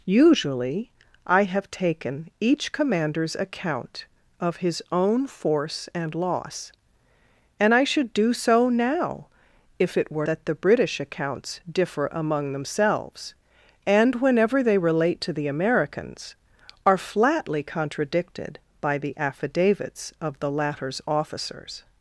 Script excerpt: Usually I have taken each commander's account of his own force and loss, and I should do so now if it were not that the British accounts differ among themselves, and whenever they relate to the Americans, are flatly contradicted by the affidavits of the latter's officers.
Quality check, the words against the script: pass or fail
fail